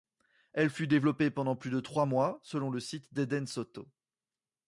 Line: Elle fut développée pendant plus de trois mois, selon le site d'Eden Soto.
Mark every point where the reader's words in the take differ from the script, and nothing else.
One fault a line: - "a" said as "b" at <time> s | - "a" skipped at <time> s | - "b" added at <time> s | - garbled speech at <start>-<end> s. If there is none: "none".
none